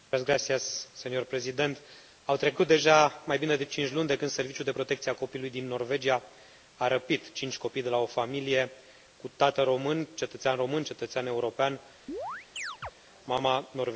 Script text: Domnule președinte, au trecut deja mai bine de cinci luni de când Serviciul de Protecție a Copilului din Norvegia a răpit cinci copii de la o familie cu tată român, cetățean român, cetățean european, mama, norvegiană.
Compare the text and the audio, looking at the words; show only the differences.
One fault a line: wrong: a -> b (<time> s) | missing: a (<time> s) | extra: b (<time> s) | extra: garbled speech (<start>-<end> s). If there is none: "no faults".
no faults